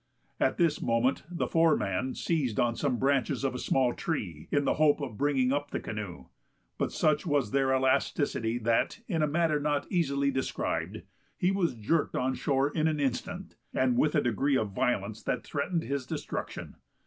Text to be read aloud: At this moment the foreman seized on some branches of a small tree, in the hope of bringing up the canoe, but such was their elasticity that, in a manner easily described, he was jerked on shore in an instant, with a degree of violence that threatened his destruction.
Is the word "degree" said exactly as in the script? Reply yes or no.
yes